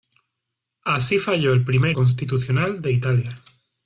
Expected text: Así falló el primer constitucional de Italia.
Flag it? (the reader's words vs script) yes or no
no